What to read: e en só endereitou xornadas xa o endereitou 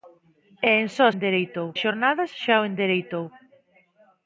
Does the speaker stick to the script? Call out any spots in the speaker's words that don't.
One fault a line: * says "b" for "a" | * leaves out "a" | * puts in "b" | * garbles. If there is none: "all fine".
all fine